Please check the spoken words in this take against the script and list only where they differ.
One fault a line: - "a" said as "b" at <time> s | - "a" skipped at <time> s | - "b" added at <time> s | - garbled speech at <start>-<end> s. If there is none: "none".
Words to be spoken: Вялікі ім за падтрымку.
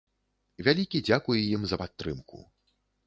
- "дзякуй" added at 1.1 s